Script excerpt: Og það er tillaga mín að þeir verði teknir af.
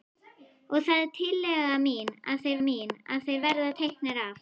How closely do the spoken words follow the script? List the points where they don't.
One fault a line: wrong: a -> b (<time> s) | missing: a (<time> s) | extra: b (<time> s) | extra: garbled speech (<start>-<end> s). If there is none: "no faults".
extra: mín að þeir (2.7 s)